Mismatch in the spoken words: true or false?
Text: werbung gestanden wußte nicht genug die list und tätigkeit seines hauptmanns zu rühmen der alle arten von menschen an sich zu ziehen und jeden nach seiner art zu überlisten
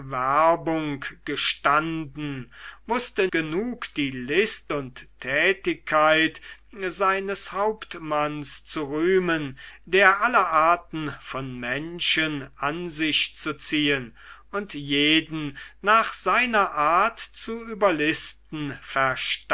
true